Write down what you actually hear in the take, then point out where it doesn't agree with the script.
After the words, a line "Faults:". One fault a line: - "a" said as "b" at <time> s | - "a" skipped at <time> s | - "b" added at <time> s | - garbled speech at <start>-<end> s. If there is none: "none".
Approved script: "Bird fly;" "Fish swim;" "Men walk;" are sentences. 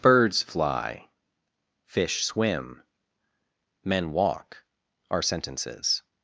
"Birds fly;" "Fish swim;" "Men walk;" are sentences.
Faults:
- "Bird" said as "Birds" at 0.0 s